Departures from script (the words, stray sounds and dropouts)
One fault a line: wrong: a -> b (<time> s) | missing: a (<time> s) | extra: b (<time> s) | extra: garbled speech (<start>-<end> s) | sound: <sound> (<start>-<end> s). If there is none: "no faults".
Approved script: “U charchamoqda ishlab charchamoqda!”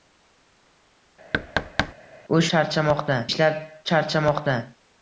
sound: thud (1.3-1.9 s)